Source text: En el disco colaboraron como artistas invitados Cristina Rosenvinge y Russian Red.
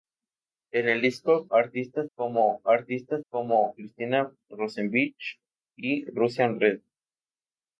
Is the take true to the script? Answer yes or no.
no